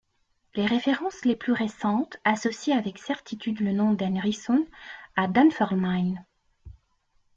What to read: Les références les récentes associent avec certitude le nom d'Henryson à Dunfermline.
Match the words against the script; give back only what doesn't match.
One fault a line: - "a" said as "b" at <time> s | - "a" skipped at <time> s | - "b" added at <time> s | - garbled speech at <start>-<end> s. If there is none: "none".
- "plus" added at 1.4 s